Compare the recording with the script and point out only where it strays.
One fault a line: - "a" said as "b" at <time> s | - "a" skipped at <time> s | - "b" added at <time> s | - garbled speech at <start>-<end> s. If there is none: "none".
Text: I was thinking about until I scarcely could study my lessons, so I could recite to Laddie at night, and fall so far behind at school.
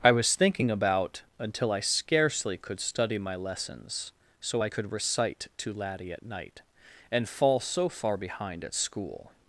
none